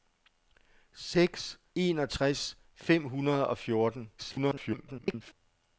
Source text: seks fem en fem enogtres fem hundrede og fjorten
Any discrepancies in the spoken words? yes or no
yes